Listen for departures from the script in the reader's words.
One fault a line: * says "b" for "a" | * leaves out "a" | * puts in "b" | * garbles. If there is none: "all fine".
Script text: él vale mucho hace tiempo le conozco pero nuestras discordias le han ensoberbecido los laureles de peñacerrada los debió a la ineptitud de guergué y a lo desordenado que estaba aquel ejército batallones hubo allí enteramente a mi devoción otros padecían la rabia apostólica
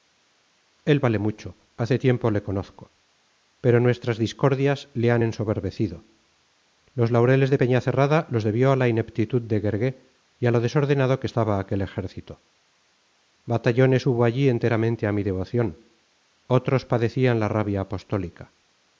all fine